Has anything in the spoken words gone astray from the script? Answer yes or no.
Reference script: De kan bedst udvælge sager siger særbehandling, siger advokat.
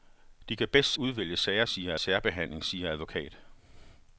no